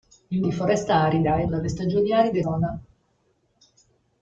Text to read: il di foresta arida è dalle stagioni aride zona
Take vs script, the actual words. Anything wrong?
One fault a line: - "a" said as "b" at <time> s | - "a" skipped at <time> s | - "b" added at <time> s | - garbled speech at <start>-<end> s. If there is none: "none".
none